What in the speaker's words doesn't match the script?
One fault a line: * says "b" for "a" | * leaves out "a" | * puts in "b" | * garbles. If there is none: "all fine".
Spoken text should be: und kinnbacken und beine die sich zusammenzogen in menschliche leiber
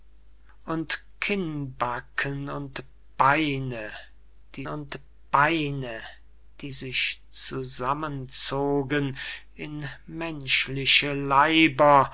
* puts in "und beine die"